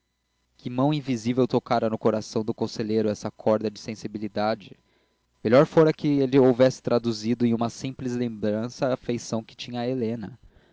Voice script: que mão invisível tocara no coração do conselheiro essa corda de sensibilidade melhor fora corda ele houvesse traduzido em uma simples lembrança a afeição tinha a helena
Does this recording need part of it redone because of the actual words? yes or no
yes